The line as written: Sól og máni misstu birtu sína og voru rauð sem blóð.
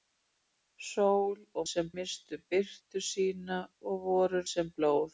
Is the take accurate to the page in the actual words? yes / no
no